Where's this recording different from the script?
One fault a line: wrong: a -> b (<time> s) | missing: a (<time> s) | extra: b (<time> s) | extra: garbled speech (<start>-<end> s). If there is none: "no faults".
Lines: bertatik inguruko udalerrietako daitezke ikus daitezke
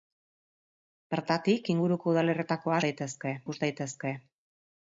no faults